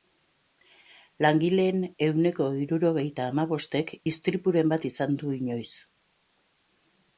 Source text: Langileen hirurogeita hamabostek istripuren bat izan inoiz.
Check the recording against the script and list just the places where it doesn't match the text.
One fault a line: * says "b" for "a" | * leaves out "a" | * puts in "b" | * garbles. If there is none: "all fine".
* puts in "ehuneko"
* puts in "du"